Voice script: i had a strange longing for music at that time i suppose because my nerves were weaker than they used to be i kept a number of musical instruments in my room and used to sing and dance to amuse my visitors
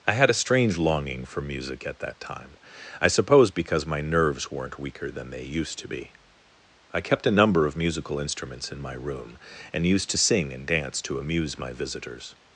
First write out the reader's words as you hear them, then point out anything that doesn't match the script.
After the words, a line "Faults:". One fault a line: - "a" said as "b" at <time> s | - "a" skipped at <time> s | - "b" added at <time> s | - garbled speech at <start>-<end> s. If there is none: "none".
i had a strange longing for music at that time i suppose because my nerves weren't weaker than they used to be i kept a number of musical instruments in my room and used to sing and dance to amuse my visitors
Faults:
- "were" said as "weren't" at 4.5 s